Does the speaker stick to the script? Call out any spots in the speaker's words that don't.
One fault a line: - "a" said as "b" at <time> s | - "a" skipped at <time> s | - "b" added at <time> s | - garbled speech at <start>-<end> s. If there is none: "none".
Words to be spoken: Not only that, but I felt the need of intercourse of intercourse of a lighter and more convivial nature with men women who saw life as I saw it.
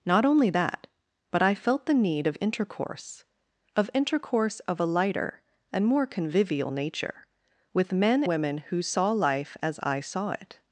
none